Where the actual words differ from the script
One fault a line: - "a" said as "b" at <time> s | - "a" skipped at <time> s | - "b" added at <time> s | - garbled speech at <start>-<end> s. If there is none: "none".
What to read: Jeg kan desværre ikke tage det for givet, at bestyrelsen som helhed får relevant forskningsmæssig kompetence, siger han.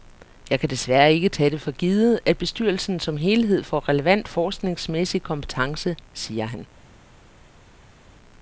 none